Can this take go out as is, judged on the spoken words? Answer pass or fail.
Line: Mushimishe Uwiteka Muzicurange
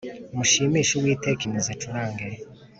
pass